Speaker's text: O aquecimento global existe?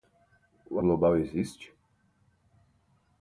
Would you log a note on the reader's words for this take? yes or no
yes